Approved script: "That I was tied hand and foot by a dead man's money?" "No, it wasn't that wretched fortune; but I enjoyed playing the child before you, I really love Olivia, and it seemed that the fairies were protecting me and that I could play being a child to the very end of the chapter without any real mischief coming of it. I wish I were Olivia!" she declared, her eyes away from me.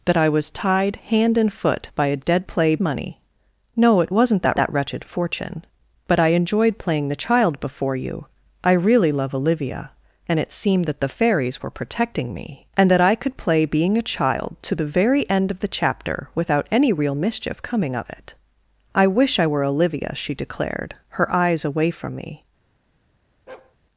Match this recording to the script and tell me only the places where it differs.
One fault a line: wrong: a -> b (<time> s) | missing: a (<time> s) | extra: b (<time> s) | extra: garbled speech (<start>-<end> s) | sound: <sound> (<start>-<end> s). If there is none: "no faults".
wrong: man's -> play (2.5 s)
extra: that (4.6 s)
sound: bark (23.5-23.8 s)